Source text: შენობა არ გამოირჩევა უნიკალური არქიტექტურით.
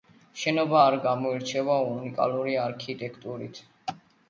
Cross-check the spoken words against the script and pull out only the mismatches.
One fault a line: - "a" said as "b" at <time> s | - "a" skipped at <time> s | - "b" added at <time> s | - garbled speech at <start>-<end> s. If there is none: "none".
none